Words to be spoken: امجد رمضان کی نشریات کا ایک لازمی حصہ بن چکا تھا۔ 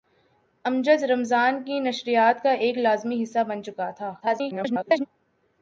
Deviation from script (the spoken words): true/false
true